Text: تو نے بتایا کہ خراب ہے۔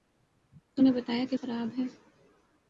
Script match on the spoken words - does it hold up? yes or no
yes